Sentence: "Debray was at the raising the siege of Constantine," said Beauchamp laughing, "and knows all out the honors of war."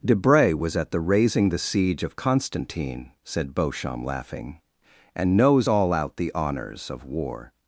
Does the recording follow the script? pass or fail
pass